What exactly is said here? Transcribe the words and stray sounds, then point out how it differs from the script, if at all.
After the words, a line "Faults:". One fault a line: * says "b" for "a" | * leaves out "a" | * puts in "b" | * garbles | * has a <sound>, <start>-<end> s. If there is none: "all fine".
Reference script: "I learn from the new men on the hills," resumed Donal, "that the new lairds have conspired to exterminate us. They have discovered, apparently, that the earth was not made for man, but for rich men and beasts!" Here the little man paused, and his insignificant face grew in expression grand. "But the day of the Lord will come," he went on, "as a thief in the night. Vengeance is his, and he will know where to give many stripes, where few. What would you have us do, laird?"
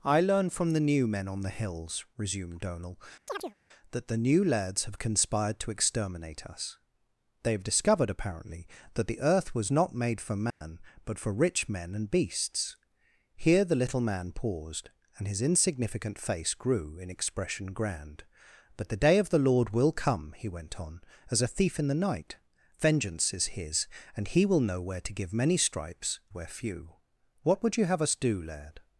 "I learn from the new men on the hills," resumed Donal, "that the new lairds have conspired to exterminate us. They have discovered, apparently, that the earth was not made for man, but for rich men and beasts!" Here the little man paused, and his insignificant face grew in expression grand. "But the day of the Lord will come," he went on, "as a thief in the night. Vengeance is his, and he will know where to give many stripes, where few. What would you have us do, laird?"
Faults:
* has a chirp, 3.3-3.5 s
* has a dropout, 10.5-10.6 s